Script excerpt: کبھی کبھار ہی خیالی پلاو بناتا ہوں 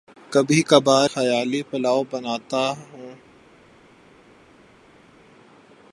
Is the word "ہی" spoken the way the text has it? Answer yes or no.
no